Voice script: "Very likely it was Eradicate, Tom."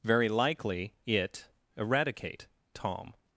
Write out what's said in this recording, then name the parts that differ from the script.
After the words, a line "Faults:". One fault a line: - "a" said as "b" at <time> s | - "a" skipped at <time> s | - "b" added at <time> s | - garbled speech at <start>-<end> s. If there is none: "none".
"Very likely it Eradicate, Tom."
Faults:
- "was" skipped at 1.5 s